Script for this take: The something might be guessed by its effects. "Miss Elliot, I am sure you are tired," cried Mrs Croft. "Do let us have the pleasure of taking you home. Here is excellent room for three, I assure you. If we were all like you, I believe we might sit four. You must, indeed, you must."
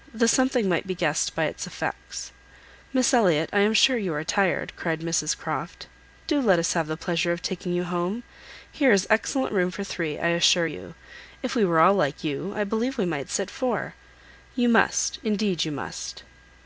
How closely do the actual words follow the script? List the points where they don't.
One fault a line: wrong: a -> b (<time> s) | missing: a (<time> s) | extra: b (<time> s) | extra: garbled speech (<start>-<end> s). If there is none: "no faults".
no faults